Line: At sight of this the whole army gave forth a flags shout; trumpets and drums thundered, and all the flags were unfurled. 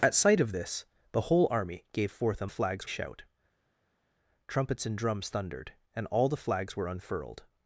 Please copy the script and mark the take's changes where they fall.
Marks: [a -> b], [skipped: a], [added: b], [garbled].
At sight of this the whole army gave forth a flags shout; trumpets and drums thundered, and all the flags were unfurled.